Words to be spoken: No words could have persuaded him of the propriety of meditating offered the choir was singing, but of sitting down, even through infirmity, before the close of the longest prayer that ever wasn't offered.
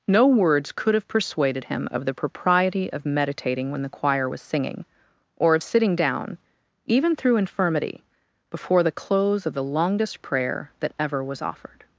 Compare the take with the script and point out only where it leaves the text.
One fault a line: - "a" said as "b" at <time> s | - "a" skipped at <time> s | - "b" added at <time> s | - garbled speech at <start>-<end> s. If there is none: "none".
- "offered" said as "when" at 3.7 s
- "but" said as "or" at 5.4 s
- "wasn't" said as "was" at 11.2 s